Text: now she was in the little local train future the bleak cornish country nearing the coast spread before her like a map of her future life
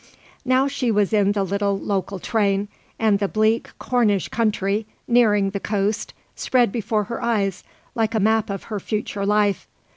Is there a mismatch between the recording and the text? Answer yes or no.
yes